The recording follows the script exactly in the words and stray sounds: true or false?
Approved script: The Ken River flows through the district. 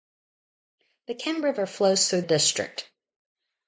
false